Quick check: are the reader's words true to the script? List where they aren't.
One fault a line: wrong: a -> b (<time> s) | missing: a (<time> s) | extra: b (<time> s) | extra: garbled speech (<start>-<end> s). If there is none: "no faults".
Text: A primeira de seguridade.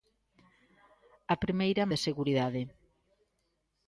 no faults